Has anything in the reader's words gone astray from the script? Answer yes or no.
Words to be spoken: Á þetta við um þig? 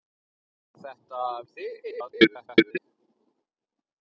yes